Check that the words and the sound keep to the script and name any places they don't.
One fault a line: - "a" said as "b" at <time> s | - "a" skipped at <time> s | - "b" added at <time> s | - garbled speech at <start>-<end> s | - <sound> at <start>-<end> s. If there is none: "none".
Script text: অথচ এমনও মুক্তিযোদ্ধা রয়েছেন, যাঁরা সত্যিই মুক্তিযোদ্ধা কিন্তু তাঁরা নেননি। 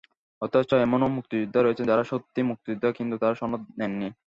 - "সনদ" added at 3.4 s